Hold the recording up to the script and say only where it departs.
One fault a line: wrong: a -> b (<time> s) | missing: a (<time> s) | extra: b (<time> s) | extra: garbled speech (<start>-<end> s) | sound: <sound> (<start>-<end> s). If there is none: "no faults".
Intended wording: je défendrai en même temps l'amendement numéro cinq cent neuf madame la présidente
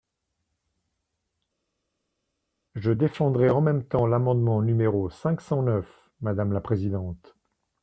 no faults